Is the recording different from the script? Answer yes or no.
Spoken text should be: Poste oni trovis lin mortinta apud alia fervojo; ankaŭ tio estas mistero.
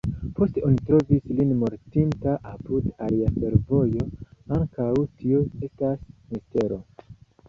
no